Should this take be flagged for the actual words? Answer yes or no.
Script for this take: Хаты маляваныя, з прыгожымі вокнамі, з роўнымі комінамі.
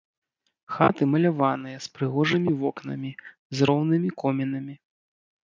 no